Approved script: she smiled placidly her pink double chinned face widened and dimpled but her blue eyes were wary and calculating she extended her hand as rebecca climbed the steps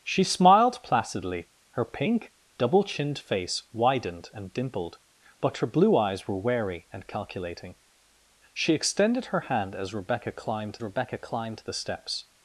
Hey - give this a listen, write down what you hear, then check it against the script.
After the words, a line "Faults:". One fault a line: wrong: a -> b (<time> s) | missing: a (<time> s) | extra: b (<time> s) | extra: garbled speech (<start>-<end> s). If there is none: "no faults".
she smiled placidly her pink double chinned face widened and dimpled but her blue eyes were wary and calculating she extended her hand as rebecca climbed rebecca climbed the steps
Faults:
extra: rebecca climbed (10.8 s)